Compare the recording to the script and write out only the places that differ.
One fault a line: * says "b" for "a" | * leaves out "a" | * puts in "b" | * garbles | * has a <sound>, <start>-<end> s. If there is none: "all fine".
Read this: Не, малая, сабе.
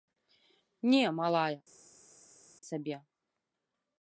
all fine